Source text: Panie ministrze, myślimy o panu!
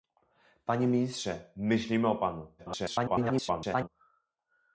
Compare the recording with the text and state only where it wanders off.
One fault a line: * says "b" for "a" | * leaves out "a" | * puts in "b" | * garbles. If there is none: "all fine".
* garbles